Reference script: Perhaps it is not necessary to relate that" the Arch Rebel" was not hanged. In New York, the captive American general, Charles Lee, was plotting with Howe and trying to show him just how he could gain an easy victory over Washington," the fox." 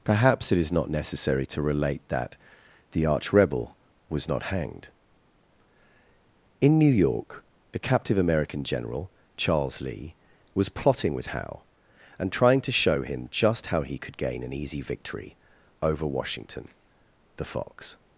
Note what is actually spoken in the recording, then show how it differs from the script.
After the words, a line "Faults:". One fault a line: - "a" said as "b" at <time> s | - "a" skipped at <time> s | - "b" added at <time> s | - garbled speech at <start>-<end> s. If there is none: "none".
Perhaps it is not necessary to relate that" the Arch Rebel" was not hanged. In New York, the captive American general, Charles Lee, was plotting with Howe and trying to show him just how he could gain an easy victory over Washington," the fox."
Faults:
none